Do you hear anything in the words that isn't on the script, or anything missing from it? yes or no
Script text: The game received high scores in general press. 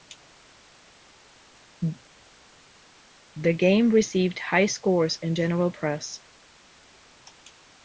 no